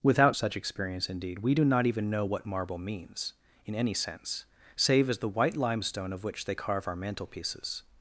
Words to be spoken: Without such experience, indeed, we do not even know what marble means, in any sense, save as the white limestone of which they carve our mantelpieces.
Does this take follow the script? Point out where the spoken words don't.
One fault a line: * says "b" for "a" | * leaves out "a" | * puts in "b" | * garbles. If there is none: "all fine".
all fine